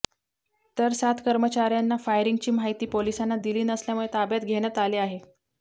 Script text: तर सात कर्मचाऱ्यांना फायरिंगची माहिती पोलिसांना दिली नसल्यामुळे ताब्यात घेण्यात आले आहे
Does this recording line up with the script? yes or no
yes